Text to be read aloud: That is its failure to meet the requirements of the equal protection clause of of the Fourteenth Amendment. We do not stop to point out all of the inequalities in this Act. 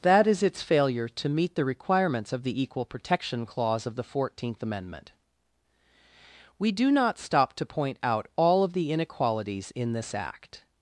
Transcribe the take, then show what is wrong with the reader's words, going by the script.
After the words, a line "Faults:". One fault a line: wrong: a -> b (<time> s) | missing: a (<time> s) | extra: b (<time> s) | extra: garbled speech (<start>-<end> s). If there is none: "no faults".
That is its failure to meet the requirements of the equal protection clause of the Fourteenth Amendment. We do not stop to point out all of the inequalities in this Act.
Faults:
missing: of (4.0 s)